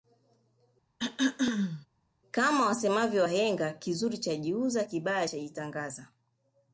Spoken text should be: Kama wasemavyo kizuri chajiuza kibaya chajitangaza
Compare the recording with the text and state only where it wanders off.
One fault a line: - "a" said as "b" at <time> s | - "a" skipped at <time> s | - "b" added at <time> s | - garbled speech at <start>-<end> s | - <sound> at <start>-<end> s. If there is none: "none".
- throat clearing at 1.0-1.9 s
- "wahenga" added at 3.2 s